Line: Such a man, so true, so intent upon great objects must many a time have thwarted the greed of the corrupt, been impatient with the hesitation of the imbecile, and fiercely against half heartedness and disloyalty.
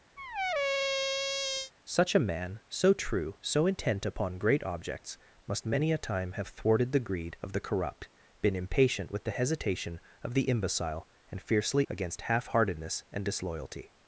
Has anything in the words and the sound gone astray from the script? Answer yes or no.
yes